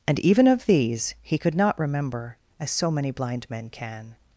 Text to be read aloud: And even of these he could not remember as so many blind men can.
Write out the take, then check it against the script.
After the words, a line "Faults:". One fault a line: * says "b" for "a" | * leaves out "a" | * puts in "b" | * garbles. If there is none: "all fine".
And even of these he could not remember as so many blind men can.
Faults:
all fine